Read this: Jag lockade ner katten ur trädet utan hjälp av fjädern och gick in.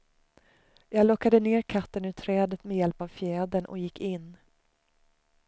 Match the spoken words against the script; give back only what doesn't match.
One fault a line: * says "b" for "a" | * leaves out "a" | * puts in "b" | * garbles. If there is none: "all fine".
* says "med" for "utan"